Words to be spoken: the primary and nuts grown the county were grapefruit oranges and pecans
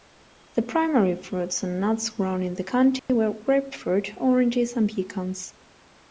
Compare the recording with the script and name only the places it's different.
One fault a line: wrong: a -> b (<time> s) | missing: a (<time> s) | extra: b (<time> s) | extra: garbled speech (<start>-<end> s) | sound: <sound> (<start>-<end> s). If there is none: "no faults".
extra: fruits (1.1 s)
extra: in (2.4 s)
sound: dropout (3.0-3.1 s)